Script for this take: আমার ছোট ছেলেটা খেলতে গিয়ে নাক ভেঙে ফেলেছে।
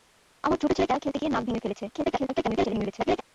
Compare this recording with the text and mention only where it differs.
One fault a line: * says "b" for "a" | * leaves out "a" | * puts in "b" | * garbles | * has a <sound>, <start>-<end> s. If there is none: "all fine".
* garbles